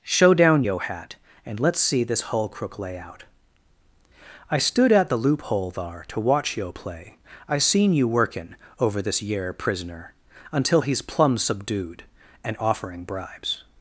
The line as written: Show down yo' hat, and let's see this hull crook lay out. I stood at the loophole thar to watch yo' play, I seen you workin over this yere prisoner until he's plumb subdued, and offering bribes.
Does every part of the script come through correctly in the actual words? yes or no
yes